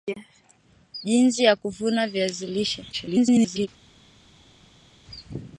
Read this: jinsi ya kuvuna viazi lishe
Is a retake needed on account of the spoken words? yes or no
yes